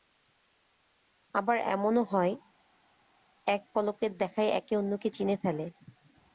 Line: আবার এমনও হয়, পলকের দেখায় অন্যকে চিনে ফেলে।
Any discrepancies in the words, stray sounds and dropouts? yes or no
yes